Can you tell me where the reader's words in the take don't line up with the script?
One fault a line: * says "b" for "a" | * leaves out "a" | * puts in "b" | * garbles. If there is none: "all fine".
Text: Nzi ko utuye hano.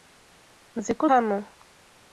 * leaves out "utuye"